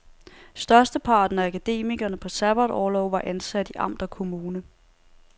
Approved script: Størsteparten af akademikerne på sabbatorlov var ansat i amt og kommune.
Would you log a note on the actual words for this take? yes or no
no